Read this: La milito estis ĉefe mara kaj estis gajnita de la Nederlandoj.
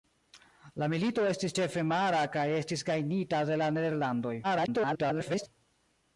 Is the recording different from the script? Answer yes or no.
yes